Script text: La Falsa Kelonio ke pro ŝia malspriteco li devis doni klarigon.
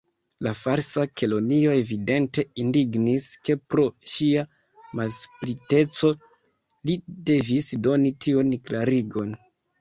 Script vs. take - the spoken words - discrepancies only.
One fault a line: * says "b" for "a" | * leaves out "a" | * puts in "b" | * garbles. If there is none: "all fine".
* puts in "evidente indignis"
* puts in "tiun"